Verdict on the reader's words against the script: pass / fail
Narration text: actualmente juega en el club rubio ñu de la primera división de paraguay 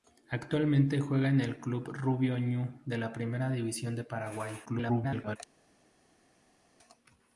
fail